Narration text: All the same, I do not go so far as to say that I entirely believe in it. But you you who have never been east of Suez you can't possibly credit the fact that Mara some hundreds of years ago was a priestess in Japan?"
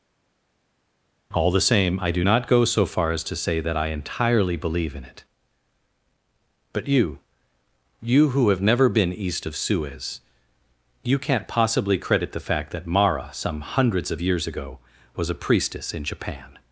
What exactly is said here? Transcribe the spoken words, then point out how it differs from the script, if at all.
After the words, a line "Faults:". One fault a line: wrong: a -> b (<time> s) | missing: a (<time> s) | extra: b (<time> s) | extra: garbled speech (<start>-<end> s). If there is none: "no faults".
All the same, I do not go so far as to say that I entirely believe in it. But you you who have never been east of Suez you can't possibly credit the fact that Mara some hundreds of years ago was a priestess in Japan?"
Faults:
no faults